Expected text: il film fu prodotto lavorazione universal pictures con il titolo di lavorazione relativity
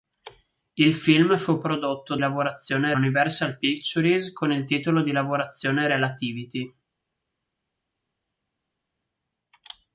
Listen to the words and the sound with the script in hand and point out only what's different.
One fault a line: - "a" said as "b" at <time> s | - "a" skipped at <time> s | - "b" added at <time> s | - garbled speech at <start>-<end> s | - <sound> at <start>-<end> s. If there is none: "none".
none